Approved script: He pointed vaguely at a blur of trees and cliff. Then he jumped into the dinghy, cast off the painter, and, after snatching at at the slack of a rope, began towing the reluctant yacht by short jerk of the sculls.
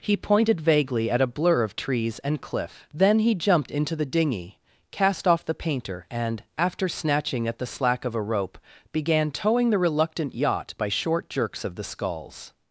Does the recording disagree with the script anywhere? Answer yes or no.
yes